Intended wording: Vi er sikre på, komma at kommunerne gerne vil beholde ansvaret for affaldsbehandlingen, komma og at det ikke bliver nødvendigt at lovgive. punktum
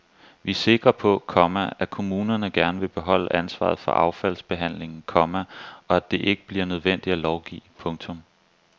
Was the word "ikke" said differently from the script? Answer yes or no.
no